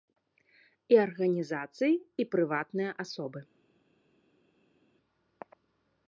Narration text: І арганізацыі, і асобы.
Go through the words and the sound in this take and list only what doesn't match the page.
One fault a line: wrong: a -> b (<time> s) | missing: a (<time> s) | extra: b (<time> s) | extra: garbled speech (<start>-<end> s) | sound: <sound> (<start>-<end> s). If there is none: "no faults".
extra: прыватныя (2.3 s)